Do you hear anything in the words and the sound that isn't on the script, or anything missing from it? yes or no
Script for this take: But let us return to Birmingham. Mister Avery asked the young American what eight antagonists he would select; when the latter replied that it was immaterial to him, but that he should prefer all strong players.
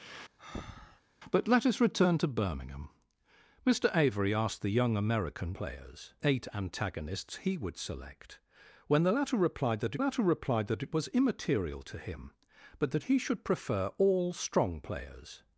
yes